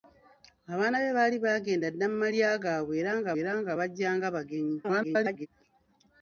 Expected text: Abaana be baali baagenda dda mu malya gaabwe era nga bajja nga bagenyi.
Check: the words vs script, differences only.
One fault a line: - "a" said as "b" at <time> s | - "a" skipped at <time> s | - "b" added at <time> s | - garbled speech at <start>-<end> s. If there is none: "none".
- "era nga" added at 3.4 s
- garbled speech at 4.8-5.5 s